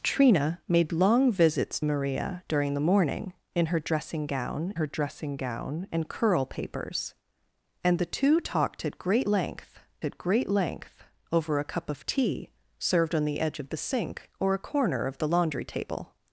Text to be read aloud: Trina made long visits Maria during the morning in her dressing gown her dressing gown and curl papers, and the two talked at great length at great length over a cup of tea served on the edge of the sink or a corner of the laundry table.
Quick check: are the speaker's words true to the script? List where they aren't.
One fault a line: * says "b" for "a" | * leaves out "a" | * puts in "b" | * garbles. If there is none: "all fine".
all fine